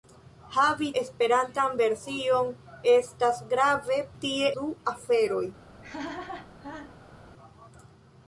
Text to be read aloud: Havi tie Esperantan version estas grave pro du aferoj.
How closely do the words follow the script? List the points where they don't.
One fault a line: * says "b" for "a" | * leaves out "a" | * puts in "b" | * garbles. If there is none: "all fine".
* leaves out "tie"
* says "tie" for "pro"